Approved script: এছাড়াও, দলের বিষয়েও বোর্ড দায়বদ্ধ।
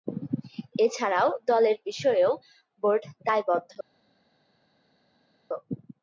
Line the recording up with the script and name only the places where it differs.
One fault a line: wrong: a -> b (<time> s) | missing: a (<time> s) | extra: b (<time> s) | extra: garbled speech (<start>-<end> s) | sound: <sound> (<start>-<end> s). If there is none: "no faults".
no faults